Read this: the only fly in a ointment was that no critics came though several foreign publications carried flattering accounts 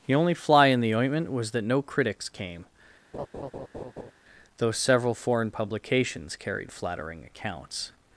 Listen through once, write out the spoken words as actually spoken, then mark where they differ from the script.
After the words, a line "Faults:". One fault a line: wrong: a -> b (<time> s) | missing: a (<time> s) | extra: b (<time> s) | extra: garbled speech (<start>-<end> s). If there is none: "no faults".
the only fly in the ointment was that no critics came though several foreign publications carried flattering accounts
Faults:
wrong: a -> the (0.8 s)